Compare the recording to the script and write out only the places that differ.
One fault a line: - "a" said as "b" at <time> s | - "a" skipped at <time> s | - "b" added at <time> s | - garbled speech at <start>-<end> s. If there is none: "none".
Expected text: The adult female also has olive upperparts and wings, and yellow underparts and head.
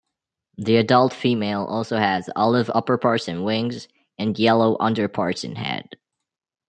none